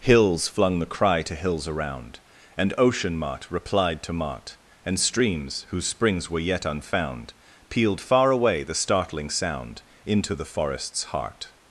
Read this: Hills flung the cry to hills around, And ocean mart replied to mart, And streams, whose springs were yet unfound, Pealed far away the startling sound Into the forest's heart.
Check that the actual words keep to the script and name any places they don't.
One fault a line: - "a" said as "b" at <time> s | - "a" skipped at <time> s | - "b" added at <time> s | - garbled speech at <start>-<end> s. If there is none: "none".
none